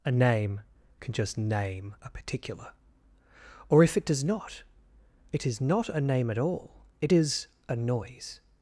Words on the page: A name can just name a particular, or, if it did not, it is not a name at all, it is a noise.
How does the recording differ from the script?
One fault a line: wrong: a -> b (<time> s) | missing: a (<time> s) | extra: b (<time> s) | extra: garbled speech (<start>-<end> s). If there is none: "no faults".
wrong: did -> does (4.0 s)